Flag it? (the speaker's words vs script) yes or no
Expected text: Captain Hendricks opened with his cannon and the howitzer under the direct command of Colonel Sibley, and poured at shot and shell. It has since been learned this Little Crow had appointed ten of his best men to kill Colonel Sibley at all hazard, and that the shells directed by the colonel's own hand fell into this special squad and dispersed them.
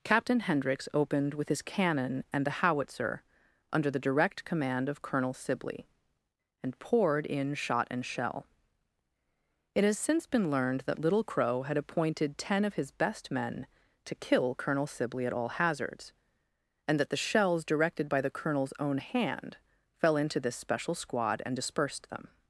yes